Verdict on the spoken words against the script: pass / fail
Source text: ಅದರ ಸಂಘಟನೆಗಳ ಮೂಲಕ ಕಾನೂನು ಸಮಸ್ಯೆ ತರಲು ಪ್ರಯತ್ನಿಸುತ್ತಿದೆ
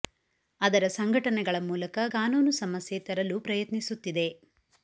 pass